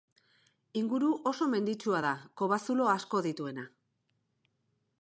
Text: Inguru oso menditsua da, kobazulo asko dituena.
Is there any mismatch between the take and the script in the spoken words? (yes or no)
no